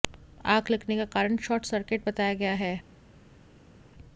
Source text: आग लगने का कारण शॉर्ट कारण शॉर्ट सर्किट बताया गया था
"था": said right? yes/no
no